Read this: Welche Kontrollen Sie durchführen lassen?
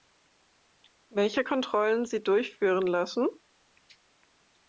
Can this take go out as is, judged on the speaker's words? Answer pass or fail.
pass